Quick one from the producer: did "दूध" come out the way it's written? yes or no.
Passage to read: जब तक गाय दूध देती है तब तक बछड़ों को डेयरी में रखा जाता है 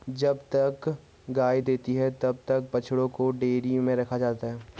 no